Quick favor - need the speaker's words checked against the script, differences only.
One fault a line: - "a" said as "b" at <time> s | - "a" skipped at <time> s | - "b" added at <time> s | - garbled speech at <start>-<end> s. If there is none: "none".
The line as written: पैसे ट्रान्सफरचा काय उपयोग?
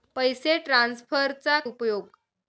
- "काय" skipped at 1.6 s